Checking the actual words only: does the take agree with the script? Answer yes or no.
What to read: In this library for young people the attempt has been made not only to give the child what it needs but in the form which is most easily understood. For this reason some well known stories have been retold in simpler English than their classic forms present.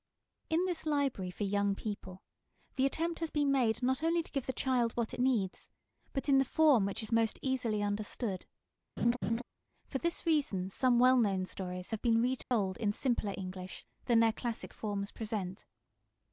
yes